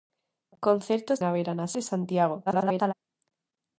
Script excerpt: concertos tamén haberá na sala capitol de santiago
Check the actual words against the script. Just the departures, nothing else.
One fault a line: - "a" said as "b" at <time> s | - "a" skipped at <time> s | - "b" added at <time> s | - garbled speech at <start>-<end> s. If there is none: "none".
- "tamén" skipped at 1.2 s
- "sala capitol" skipped at 1.7 s
- garbled speech at 2.5-2.9 s